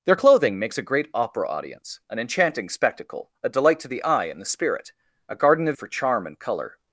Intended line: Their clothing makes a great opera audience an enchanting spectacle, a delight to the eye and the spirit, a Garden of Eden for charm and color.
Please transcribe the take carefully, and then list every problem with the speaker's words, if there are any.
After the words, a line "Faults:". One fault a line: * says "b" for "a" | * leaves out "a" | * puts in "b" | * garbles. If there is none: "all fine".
Their clothing makes a great opera audience an enchanting spectacle, a delight to the eye and the spirit, a Garden of For charm and color.
Faults:
* leaves out "Eden"